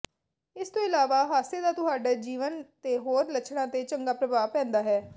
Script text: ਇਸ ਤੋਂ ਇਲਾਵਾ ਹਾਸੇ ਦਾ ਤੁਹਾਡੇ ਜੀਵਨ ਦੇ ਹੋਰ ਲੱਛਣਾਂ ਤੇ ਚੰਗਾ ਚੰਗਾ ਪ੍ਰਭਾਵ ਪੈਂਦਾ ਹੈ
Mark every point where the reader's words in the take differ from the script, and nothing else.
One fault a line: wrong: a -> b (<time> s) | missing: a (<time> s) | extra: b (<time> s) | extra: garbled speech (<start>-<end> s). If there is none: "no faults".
missing: ਚੰਗਾ (4.1 s)